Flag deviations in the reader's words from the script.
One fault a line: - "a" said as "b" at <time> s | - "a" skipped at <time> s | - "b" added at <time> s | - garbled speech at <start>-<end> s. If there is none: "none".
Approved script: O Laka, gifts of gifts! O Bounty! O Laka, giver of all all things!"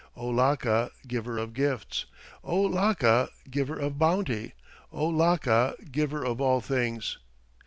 - "gifts" said as "giver" at 1.1 s
- "Laka giver of" added at 2.7 s
- "all" skipped at 6.6 s